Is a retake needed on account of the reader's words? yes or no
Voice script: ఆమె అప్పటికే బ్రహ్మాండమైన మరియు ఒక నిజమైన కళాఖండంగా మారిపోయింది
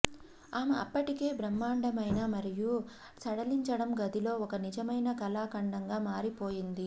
yes